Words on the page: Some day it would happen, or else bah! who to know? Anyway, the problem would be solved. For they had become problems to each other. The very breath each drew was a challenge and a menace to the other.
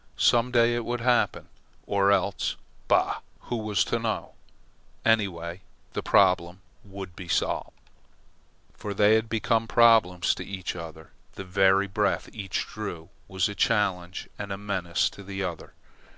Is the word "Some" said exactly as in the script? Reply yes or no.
yes